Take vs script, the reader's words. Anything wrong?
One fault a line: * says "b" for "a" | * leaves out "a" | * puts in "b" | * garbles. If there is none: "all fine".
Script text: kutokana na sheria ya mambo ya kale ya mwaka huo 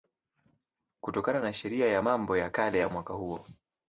all fine